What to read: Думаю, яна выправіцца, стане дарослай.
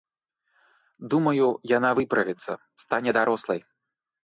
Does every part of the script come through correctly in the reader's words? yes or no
yes